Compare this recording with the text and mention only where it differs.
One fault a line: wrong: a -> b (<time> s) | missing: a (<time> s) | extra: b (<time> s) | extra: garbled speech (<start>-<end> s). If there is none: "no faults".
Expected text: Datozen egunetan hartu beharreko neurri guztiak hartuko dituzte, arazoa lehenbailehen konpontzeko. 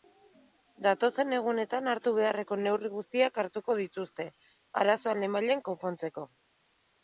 no faults